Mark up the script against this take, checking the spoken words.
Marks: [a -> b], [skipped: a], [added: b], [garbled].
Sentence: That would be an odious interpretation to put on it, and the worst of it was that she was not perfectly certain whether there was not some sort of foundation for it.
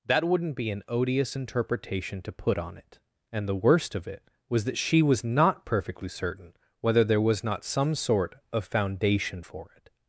That [would -> wouldn't] be an odious interpretation to put on it, and the worst of it was that she was not perfectly certain whether there was not some sort of foundation for it.